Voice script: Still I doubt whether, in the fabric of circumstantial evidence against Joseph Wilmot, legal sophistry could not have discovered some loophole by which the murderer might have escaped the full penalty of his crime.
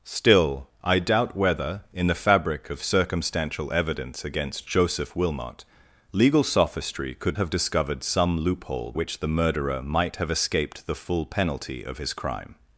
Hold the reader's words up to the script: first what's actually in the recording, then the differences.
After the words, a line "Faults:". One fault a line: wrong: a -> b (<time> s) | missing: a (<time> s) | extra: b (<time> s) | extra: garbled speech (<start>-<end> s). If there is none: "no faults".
Still I doubt whether, in the fabric of circumstantial evidence against Joseph Wilmot, legal sophistry could have discovered some loophole which the murderer might have escaped the full penalty of his crime.
Faults:
missing: not (7.4 s)
missing: by (8.9 s)